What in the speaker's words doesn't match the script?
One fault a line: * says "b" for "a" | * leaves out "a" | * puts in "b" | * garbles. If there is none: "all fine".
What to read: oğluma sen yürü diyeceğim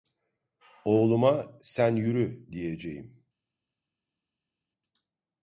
all fine